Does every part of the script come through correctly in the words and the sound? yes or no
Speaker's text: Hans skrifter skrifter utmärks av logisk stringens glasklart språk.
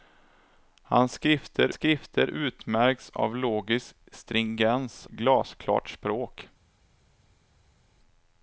yes